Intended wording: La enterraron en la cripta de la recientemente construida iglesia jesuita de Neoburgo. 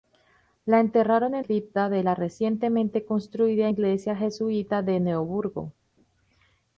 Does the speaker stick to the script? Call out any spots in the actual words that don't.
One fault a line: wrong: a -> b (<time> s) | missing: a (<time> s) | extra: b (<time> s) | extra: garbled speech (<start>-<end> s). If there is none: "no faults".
missing: la (1.4 s)